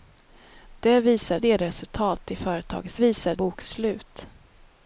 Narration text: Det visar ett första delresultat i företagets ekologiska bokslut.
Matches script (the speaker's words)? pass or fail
fail